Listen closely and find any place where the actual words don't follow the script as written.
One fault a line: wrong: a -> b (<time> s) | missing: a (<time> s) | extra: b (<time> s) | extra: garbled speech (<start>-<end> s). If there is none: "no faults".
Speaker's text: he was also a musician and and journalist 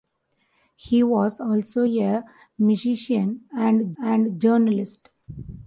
no faults